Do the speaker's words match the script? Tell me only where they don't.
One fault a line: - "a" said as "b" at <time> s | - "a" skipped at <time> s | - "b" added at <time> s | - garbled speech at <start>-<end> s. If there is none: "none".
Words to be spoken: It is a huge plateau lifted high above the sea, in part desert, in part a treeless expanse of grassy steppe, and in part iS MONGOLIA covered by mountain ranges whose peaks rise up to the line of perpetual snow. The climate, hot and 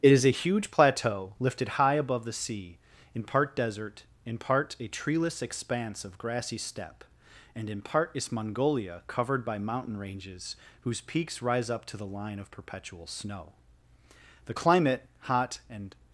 none